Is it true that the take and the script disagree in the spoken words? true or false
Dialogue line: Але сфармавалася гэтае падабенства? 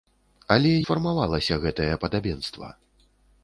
false